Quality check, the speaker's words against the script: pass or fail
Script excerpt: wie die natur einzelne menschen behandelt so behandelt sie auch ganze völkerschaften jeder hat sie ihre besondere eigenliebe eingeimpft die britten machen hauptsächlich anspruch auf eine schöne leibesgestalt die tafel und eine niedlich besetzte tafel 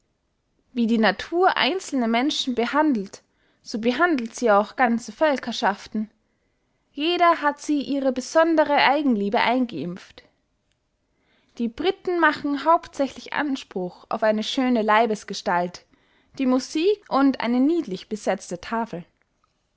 fail